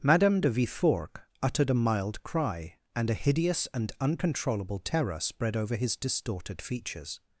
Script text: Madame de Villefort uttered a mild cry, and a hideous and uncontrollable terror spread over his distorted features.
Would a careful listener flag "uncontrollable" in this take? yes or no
no